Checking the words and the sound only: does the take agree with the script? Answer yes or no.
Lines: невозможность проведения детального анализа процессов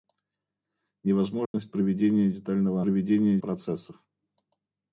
no